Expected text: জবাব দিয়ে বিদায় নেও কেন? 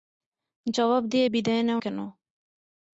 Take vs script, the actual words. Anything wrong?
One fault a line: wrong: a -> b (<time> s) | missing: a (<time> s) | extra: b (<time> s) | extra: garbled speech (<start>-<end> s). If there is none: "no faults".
no faults